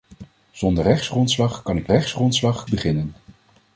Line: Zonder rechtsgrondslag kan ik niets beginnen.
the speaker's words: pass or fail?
fail